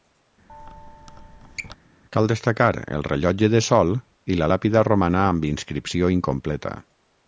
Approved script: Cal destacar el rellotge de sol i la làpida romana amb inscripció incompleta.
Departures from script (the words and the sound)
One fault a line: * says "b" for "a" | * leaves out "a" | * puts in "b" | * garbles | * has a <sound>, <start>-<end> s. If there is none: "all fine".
* has a squeak, 0.5-1.8 s